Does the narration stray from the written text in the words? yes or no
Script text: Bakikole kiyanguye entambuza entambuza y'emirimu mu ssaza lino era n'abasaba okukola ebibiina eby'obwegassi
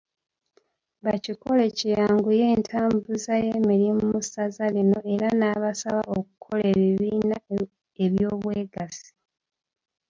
yes